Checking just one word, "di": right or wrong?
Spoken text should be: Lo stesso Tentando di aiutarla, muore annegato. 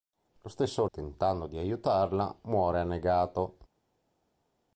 right